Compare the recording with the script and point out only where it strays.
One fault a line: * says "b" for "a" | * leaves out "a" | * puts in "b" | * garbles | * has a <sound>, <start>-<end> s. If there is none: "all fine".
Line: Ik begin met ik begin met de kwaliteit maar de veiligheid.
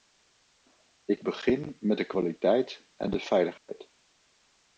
* leaves out "ik begin met"
* says "en" for "maar"
* has a dropout, 3.6-3.7 s